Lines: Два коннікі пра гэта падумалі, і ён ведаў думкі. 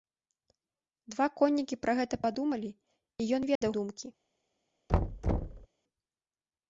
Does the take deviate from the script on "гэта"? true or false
false